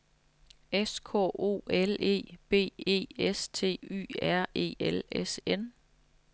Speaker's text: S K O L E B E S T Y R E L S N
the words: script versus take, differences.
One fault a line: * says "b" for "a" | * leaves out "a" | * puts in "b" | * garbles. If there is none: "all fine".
all fine